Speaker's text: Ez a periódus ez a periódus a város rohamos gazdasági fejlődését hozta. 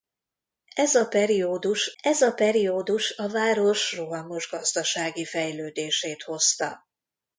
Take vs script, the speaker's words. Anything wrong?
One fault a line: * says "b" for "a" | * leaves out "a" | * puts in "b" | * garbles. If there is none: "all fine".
all fine